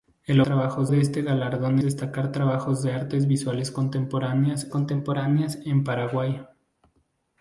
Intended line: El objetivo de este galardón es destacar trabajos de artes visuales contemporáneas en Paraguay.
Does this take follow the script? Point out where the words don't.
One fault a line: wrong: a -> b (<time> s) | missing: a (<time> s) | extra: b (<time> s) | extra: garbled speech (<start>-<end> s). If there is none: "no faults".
wrong: objetivo -> trabajos (0.4 s)
missing: es (1.8 s)
extra: contemporáneas (4.7 s)